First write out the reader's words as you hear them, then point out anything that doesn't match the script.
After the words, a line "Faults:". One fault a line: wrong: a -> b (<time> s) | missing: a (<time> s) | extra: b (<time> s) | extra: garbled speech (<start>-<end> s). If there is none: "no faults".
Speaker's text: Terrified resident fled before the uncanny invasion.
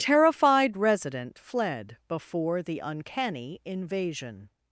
Terrified resident fled before the uncanny invasion.
Faults:
no faults